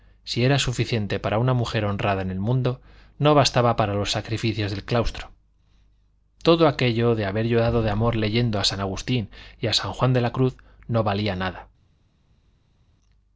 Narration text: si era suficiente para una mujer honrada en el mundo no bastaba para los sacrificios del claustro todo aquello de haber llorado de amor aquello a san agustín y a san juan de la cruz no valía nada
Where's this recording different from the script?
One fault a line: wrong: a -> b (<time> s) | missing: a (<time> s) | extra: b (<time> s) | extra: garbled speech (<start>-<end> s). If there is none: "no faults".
wrong: aquello -> leyendo (8.2 s)